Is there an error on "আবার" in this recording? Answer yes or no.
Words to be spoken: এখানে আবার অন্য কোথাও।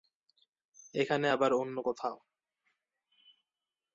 no